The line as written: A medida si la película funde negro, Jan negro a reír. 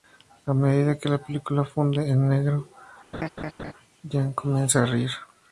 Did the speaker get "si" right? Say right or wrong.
wrong